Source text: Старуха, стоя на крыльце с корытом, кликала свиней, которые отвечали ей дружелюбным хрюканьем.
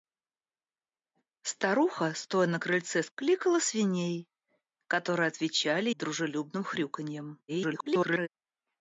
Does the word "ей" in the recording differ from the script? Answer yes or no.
yes